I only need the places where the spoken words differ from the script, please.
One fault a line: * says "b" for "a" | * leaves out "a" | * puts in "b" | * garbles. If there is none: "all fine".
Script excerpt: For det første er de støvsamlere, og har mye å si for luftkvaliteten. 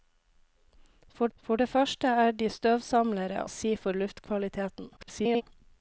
* puts in "for"
* leaves out "og har mye"
* garbles